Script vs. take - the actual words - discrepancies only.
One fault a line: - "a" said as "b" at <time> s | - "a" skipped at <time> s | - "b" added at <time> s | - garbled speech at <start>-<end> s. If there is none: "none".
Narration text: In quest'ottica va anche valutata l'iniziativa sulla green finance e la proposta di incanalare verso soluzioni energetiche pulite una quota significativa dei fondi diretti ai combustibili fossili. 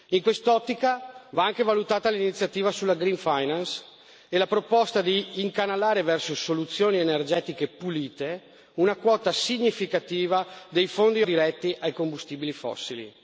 none